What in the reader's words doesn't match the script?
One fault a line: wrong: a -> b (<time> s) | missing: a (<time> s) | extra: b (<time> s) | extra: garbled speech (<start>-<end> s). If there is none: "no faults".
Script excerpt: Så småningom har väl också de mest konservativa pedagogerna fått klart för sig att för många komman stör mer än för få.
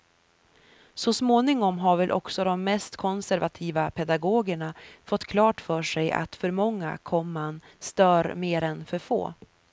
no faults